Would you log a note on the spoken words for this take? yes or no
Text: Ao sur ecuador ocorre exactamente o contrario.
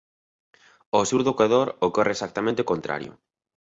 yes